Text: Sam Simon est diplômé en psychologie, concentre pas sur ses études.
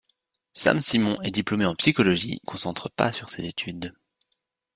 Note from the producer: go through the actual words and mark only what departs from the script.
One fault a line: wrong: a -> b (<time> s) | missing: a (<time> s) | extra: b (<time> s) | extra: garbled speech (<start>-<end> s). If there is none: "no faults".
no faults